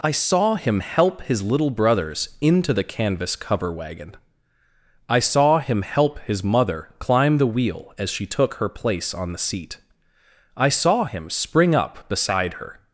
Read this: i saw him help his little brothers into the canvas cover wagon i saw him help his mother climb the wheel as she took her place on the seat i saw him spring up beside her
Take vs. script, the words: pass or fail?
pass